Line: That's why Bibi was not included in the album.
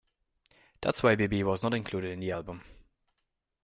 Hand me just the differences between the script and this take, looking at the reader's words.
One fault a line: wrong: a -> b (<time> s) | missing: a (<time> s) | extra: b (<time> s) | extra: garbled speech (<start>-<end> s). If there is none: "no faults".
no faults